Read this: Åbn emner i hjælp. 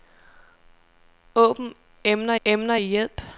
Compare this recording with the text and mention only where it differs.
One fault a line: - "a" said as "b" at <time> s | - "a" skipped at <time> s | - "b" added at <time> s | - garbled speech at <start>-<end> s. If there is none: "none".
- "emner" added at 2.4 s